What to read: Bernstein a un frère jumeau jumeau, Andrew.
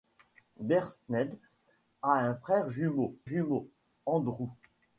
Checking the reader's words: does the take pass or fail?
pass